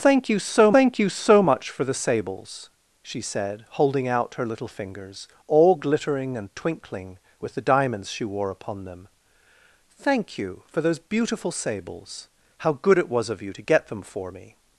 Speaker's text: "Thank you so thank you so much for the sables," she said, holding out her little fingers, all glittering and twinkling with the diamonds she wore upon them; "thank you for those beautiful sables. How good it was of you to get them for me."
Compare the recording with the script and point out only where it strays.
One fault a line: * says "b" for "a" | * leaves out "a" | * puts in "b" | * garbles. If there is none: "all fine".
all fine